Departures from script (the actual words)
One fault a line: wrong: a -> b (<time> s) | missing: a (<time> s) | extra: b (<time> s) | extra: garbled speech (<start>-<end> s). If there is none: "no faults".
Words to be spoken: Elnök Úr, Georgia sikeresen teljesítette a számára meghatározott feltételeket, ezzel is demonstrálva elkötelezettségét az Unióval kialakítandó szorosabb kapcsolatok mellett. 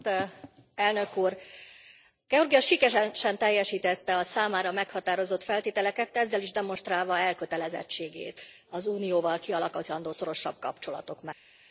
no faults